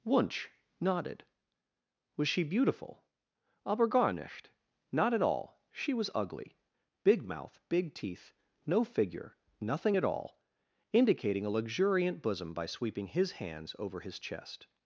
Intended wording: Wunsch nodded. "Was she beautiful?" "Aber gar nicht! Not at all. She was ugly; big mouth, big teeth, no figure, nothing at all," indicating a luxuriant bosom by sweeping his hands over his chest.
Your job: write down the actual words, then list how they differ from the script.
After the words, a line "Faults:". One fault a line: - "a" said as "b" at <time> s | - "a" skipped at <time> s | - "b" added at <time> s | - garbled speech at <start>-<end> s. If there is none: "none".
Wunsch nodded. "Was she beautiful?" "Aber gar nicht! Not at all. She was ugly; big mouth, big teeth, no figure, nothing at all," indicating a luxuriant bosom by sweeping his hands over his chest.
Faults:
none